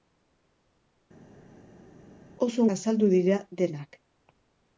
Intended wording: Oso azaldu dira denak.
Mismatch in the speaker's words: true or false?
false